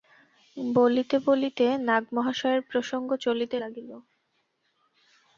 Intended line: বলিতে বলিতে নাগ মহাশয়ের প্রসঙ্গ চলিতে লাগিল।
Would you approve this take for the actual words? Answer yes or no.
yes